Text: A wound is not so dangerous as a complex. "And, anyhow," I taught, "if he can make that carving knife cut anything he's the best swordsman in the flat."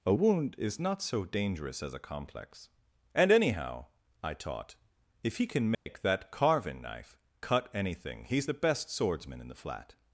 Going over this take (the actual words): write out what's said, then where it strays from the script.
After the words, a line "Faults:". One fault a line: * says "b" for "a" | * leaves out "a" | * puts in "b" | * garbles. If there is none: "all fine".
A wound is not so dangerous as a complex. "And, anyhow," I taught, "if he can make that carving knife cut anything he's the best swordsman in the flat."
Faults:
all fine